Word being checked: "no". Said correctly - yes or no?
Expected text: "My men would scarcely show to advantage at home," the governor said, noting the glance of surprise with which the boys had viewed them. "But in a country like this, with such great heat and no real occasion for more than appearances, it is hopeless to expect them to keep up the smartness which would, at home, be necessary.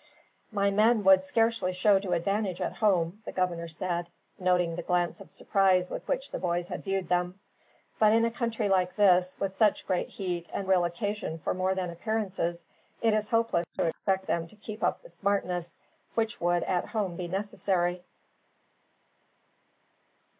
no